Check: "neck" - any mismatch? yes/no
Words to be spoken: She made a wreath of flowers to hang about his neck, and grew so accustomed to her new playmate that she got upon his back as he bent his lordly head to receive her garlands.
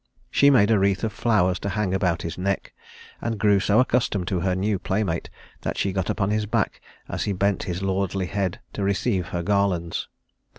no